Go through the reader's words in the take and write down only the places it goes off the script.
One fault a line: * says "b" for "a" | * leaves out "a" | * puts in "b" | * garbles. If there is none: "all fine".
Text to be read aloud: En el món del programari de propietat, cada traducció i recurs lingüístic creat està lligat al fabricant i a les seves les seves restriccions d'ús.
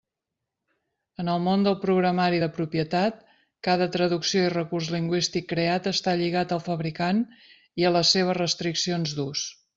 * leaves out "les seves"